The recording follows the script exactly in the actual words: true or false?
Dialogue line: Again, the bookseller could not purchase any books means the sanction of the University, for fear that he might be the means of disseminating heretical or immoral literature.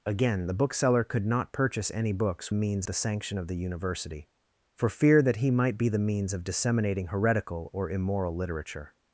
true